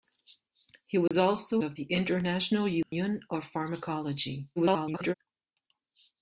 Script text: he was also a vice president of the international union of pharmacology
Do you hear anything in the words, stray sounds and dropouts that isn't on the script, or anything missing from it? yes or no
yes